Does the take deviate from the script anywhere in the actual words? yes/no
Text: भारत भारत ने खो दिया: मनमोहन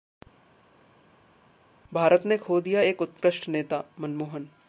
yes